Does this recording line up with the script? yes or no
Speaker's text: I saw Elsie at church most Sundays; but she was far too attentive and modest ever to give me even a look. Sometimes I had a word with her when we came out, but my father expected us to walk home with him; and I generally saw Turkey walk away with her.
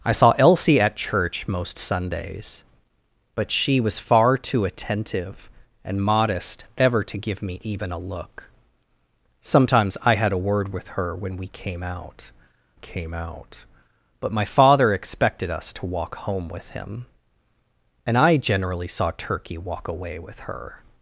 no